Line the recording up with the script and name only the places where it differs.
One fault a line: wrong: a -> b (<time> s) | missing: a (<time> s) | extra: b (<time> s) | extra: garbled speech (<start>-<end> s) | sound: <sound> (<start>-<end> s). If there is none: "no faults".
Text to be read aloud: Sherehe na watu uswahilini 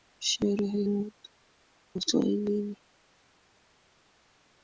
no faults